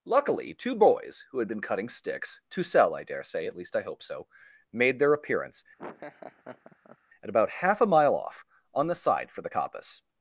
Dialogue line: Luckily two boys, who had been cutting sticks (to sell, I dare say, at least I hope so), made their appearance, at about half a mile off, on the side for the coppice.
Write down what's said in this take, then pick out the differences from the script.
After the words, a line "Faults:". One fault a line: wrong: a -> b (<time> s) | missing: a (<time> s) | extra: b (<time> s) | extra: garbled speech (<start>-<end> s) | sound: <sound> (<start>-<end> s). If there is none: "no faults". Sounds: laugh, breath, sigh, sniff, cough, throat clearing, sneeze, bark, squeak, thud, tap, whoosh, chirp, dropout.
Luckily two boys, who had been cutting sticks (to sell, I dare say, at least I hope so), made their appearance, at about half a mile off, on the side for the coppice.
Faults:
sound: laugh (5.8-7.0 s)